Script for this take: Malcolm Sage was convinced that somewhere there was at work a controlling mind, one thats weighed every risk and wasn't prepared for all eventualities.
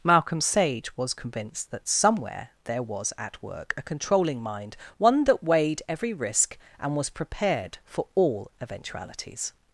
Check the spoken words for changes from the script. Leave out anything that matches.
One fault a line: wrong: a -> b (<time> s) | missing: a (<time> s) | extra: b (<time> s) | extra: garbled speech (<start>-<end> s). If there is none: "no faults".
wrong: thats -> that (5.3 s)
wrong: wasn't -> was (7.0 s)